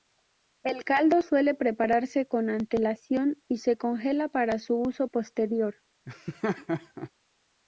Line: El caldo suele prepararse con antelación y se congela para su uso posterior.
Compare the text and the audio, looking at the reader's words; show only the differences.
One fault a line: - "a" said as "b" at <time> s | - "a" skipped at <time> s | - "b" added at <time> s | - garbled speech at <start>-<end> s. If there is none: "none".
none